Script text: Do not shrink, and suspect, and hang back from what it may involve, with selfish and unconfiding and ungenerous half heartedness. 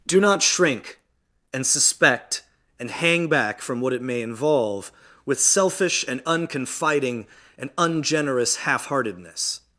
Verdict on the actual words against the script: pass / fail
pass